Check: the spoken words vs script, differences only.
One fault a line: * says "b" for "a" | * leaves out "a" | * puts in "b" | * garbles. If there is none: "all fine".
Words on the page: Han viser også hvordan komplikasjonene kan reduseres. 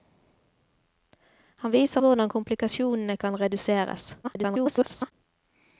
* leaves out "også"
* garbles